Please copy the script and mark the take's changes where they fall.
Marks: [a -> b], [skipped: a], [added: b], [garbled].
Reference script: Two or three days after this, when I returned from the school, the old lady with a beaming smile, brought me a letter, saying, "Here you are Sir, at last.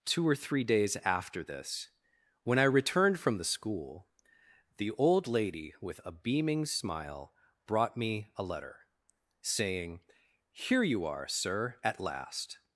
Two or three days after this, when I returned from the school, the old lady with a beaming smile, brought me a letter, saying, "Here you are Sir, at last.